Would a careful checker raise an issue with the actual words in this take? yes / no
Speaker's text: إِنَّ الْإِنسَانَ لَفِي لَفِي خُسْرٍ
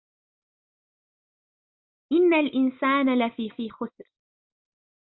no